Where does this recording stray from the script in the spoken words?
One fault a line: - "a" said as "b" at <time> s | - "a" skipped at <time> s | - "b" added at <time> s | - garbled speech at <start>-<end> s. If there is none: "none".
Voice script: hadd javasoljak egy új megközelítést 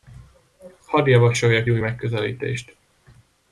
- "egy" skipped at 1.7 s